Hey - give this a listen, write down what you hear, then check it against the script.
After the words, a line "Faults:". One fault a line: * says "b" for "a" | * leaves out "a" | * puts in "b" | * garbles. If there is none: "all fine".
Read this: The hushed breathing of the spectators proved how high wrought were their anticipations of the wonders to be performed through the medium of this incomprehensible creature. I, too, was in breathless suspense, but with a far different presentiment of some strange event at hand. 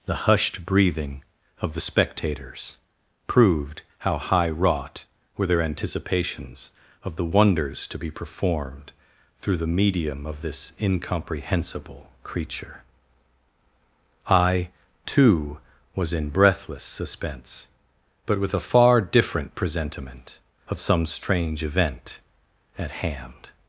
The hushed breathing of the spectators proved how high wrought were their anticipations of the wonders to be performed through the medium of this incomprehensible creature. I, too, was in breathless suspense, but with a far different presentiment of some strange event at hand.
Faults:
all fine